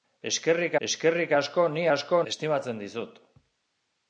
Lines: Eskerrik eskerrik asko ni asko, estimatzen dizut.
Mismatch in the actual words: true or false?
false